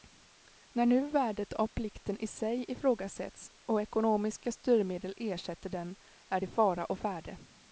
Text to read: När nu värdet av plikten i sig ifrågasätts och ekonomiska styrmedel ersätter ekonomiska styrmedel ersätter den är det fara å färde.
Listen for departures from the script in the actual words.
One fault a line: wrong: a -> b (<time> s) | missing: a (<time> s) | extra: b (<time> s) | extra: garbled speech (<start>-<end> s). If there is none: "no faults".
missing: ekonomiska styrmedel ersätter (5.7 s)